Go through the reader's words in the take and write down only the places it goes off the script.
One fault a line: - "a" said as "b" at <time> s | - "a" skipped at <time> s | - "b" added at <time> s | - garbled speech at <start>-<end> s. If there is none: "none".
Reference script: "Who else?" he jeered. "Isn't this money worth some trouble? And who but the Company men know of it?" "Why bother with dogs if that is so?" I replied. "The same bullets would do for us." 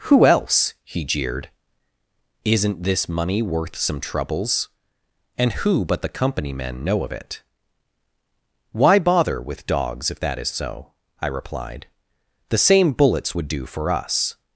- "trouble" said as "troubles" at 4.0 s